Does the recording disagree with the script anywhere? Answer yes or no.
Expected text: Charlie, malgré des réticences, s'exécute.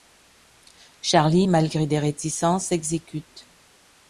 no